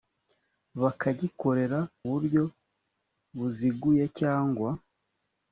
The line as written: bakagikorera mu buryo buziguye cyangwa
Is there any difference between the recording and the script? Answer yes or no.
yes